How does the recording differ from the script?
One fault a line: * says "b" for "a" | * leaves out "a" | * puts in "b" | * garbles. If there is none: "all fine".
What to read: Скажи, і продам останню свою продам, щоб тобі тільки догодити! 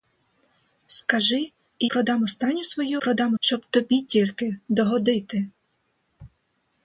all fine